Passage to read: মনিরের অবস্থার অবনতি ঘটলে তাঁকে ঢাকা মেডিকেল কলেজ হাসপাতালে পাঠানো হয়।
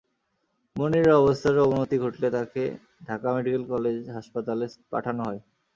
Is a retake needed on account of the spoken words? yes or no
no